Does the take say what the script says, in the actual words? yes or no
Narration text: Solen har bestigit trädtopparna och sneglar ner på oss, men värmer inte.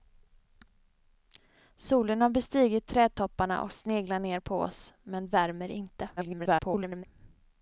no